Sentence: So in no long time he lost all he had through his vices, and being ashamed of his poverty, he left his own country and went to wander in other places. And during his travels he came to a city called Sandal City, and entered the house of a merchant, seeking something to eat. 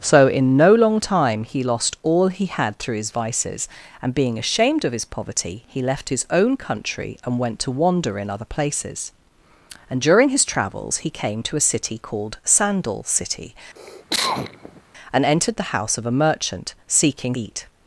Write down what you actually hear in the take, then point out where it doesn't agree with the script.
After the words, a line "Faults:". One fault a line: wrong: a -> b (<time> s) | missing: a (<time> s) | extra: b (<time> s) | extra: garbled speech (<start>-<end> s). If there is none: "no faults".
So in no long time he lost all he had through his vices, and being ashamed of his poverty, he left his own country and went to wander in other places. And during his travels he came to a city called Sandal City, and entered the house of a merchant, seeking eat.
Faults:
missing: something to (17.4 s)